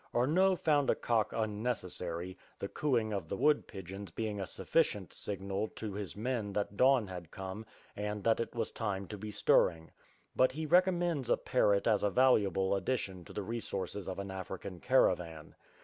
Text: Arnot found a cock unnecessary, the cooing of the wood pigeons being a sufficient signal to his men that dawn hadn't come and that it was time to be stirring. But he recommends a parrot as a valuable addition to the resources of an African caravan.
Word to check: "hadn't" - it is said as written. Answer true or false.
false